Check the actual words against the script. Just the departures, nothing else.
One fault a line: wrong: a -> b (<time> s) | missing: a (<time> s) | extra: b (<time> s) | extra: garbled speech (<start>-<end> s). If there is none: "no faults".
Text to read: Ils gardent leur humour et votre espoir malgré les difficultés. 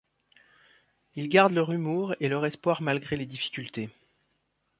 wrong: votre -> leur (2.3 s)